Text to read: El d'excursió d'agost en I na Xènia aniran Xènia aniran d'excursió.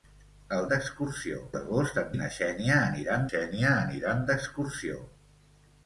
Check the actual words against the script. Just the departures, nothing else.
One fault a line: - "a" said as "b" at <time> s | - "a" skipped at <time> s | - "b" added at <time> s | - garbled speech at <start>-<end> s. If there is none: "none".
none